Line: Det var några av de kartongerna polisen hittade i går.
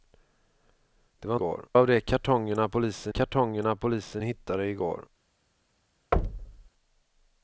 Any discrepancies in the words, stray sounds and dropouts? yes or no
yes